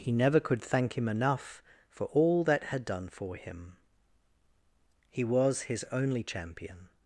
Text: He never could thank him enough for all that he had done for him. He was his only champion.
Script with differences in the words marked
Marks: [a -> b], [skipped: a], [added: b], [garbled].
He never could thank him enough for all that [skipped: he] had done for him. He was his only champion.